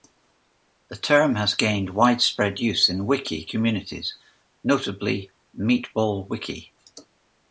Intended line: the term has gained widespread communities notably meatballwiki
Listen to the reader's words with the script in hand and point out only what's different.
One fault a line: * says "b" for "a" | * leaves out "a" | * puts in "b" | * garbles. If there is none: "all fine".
* puts in "use in wiki"